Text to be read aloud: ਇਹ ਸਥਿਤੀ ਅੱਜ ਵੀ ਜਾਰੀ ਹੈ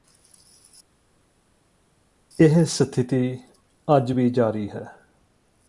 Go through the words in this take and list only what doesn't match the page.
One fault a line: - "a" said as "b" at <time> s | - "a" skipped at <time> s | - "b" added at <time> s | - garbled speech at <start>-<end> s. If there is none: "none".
none